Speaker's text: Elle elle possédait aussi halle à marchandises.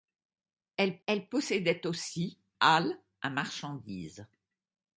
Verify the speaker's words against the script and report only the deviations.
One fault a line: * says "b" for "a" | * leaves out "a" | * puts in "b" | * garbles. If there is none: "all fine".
all fine